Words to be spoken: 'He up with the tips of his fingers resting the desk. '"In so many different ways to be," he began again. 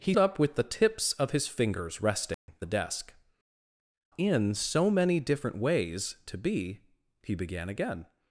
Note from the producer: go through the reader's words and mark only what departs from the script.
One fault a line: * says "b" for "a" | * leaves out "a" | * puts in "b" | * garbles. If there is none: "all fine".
all fine